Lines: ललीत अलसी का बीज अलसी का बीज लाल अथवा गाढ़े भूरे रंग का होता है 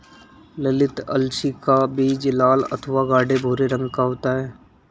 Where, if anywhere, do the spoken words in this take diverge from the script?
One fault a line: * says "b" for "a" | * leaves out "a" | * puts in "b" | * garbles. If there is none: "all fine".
* leaves out "अलसी का बीज"